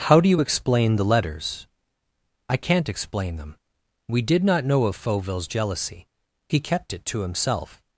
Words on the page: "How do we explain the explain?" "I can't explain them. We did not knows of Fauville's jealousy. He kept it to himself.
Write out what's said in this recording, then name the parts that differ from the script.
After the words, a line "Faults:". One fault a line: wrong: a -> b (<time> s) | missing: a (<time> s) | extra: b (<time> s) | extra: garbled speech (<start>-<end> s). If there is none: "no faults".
"How do you explain the letters?" "I can't explain them. We did not know of Fauville's jealousy. He kept it to himself.
Faults:
wrong: we -> you (0.3 s)
wrong: explain -> letters (1.0 s)
wrong: knows -> know (4.6 s)